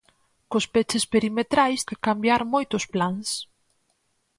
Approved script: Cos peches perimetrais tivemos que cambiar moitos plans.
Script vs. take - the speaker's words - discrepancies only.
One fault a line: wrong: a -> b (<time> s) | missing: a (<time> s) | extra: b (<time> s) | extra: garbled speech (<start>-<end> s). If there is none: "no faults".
missing: tivemos (1.8 s)